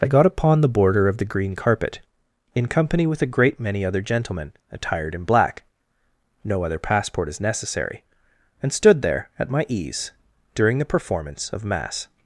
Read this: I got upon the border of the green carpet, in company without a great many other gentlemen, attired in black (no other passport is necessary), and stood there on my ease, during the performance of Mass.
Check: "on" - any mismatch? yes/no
yes